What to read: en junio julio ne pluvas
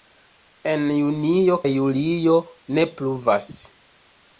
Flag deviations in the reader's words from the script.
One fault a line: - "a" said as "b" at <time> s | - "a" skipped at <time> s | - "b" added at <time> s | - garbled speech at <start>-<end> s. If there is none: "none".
none